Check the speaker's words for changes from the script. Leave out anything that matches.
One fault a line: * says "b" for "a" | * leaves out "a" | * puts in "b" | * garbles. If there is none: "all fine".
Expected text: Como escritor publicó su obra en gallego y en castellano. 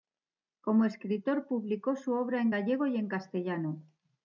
all fine